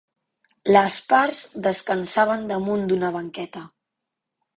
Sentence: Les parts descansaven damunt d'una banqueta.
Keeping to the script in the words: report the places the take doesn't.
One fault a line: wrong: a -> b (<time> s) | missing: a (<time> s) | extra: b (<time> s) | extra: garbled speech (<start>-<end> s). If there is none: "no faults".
no faults